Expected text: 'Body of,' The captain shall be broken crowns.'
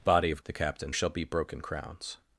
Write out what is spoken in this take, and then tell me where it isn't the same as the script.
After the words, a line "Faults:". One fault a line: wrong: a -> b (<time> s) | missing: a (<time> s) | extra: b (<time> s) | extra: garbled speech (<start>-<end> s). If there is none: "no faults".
'Body of,' The captain shall be broken crowns.'
Faults:
no faults